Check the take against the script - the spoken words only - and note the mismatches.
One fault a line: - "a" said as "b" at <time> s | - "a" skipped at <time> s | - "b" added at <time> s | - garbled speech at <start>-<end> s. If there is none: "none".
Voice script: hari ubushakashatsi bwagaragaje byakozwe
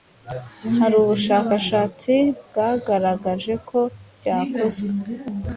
- "ko" added at 3.7 s